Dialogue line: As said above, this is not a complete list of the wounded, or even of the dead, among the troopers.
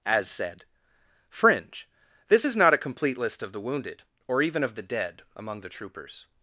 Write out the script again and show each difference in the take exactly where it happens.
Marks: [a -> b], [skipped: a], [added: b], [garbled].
As said [above, -> fringe] this is not a complete list of the wounded, or even of the dead, among the troopers.